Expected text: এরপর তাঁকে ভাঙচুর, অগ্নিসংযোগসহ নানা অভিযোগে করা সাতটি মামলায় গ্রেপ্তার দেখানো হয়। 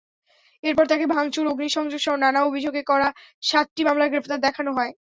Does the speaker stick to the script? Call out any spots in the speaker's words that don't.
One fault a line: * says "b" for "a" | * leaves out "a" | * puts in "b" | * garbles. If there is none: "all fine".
all fine